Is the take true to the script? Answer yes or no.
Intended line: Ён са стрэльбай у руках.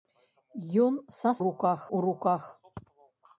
no